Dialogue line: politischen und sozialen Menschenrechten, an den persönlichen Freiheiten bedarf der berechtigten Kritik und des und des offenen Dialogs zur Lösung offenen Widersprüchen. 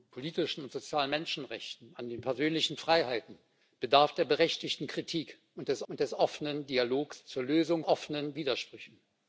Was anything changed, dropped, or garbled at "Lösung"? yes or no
no